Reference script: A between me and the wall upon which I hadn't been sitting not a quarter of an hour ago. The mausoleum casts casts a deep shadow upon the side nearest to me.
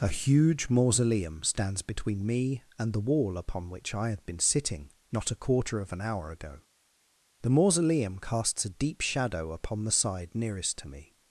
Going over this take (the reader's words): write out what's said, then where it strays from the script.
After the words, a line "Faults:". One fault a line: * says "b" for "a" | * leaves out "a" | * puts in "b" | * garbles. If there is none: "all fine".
A huge mausoleum stands between me and the wall upon which I had been sitting not a quarter of an hour ago. The mausoleum casts a deep shadow upon the side nearest to me.
Faults:
* puts in "huge mausoleum stands"
* says "had" for "hadn't"
* leaves out "casts"